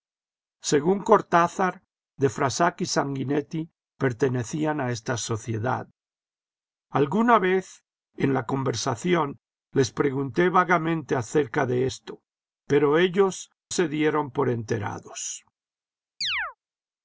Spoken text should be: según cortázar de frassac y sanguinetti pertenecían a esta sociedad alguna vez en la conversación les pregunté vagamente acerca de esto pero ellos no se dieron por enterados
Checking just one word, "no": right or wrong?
wrong